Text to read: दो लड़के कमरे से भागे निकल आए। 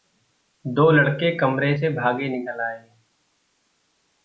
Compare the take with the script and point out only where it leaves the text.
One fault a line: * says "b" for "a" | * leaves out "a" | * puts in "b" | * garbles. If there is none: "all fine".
all fine